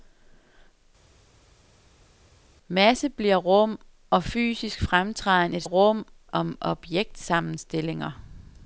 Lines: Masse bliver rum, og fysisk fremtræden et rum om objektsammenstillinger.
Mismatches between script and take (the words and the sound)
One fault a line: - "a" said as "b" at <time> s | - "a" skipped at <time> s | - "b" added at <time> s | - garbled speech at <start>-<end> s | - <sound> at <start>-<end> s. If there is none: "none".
none